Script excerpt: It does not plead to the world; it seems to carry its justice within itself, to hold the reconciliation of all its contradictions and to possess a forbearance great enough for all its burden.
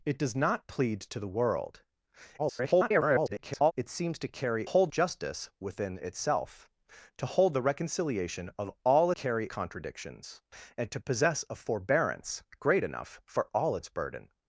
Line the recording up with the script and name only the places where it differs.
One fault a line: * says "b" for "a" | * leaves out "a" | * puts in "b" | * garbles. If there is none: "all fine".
* garbles
* says "hold" for "its"
* says "carry" for "its"